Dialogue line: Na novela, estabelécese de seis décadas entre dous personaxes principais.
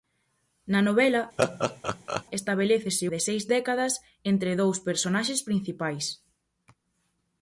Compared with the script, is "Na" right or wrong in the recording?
right